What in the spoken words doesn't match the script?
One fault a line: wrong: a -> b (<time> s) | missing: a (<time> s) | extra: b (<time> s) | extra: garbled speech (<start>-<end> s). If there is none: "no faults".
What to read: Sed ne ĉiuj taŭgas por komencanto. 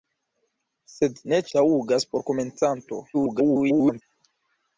missing: ĉiuj (1.4 s)
extra: garbled speech (3.1-4.0 s)